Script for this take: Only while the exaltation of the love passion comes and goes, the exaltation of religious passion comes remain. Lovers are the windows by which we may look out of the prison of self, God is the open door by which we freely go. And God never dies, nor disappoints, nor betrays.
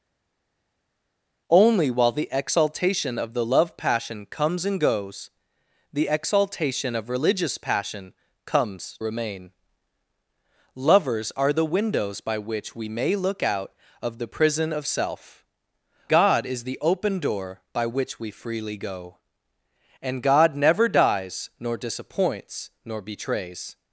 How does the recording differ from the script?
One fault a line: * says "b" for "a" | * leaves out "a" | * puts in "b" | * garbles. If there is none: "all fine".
all fine